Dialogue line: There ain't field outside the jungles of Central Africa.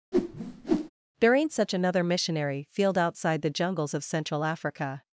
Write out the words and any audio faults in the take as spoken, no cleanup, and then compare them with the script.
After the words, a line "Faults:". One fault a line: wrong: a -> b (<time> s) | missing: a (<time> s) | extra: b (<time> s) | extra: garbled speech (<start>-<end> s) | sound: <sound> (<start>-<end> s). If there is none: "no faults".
There ain't such another missionary field outside the jungles of Central Africa.
Faults:
sound: whoosh (0.1-0.9 s)
extra: such another missionary (1.5 s)